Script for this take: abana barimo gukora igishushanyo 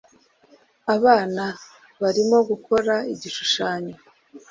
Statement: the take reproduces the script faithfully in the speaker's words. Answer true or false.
true